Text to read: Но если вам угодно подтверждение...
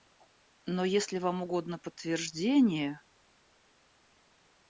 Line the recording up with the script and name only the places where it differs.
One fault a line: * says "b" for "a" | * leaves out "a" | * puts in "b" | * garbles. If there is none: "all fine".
all fine